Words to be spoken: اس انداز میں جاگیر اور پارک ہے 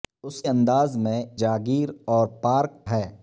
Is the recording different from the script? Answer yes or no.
no